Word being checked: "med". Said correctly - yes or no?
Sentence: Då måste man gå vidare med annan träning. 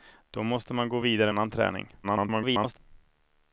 no